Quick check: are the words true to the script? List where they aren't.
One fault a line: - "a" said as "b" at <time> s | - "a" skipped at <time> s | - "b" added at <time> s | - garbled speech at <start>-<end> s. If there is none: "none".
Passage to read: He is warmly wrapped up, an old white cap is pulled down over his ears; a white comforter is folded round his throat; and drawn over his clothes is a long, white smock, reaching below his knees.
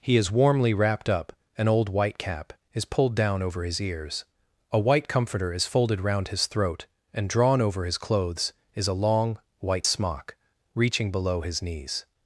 none